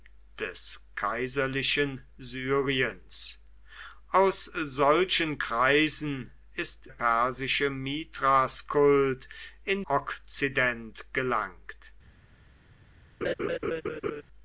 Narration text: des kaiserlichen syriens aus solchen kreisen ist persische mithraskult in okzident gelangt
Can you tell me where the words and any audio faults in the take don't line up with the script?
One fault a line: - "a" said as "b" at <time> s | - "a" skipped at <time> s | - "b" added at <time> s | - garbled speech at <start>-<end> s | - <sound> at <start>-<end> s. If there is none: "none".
- laugh at 13.2-14.2 s